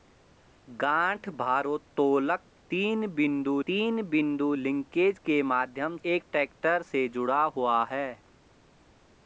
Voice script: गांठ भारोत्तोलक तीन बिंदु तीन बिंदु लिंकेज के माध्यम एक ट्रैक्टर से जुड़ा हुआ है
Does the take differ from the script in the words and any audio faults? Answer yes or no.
no